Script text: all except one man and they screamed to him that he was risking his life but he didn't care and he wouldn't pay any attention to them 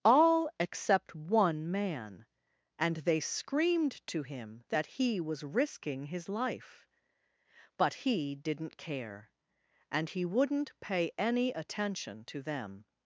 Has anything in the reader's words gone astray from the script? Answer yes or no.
no